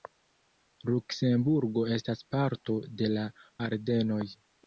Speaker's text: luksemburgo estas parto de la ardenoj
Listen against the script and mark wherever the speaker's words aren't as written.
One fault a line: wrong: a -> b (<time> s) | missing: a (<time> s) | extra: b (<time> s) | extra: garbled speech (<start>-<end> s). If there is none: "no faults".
no faults